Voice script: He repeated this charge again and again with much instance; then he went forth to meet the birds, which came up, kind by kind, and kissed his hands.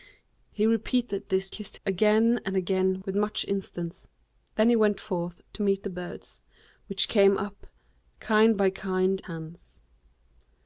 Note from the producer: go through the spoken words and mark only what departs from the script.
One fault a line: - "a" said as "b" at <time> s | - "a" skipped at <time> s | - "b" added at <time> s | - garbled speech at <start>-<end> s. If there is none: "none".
- "charge" said as "kissed" at 1.5 s
- "and kissed his" skipped at 9.2 s